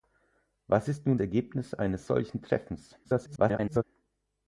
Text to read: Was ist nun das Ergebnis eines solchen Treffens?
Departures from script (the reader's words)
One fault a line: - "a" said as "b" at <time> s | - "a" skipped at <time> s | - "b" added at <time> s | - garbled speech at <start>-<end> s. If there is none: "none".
- "das" skipped at 1.2 s
- garbled speech at 3.0-3.8 s